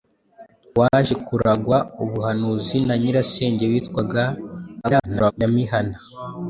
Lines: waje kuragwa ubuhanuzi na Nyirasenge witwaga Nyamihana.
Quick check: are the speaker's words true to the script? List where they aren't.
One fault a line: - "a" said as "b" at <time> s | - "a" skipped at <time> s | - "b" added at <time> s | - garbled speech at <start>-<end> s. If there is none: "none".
- garbled speech at 4.8-5.3 s